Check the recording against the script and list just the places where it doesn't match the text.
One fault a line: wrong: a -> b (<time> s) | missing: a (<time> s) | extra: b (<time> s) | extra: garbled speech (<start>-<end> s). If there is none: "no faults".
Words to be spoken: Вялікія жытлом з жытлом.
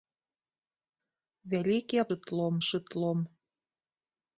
no faults